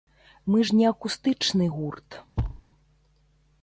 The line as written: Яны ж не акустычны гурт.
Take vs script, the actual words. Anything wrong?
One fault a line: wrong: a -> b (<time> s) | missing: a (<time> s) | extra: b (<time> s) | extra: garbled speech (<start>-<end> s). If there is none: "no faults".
wrong: Яны -> Мы (0.5 s)